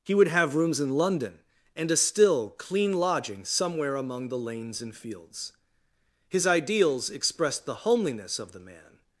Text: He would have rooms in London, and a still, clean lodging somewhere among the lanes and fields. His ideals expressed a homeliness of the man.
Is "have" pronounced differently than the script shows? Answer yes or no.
no